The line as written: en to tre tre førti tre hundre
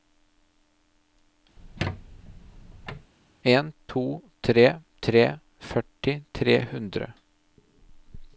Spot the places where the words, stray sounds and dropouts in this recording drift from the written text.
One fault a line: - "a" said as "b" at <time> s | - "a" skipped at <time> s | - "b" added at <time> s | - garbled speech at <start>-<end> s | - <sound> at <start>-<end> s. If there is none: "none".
- squeak at 1.6-3.1 s